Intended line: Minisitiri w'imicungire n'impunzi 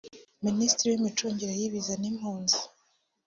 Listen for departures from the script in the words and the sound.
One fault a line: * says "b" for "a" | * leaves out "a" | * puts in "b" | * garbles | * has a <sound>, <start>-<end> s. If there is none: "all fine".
* puts in "y'ibiza"